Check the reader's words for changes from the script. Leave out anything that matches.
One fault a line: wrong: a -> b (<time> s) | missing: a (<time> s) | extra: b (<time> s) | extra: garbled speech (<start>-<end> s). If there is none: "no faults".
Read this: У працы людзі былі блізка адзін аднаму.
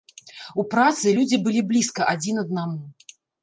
no faults